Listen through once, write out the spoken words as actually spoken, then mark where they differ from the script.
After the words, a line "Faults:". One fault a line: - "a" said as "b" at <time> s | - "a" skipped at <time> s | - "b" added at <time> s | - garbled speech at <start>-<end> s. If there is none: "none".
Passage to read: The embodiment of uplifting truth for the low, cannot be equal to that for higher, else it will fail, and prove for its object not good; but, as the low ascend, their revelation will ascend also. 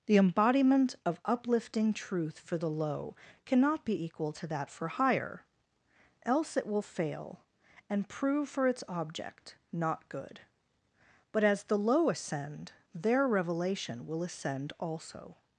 The embodiment of uplifting truth for the low, cannot be equal to that for higher, else it will fail, and prove for its object not good; but, as the low ascend, their revelation will ascend also.
Faults:
none